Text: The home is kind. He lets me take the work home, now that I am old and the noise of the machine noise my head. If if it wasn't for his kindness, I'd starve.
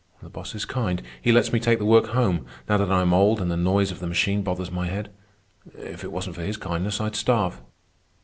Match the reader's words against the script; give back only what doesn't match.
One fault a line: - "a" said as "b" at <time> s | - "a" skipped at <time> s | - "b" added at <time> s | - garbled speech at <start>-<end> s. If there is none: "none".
- "home" said as "boss" at 0.3 s
- "noise" said as "bothers" at 4.4 s
- "if" skipped at 6.0 s